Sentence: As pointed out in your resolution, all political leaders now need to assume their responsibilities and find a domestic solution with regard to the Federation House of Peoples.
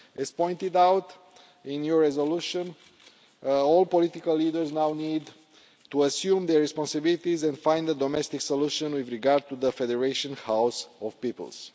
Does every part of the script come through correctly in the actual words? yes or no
yes